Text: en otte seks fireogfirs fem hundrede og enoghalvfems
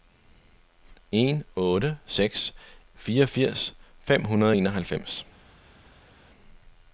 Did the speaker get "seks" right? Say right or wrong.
right